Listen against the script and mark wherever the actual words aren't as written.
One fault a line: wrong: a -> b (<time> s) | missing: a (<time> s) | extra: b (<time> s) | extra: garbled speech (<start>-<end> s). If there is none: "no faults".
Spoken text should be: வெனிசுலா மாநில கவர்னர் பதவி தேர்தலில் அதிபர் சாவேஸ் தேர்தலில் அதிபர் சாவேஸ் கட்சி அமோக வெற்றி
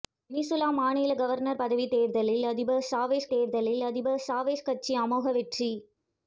no faults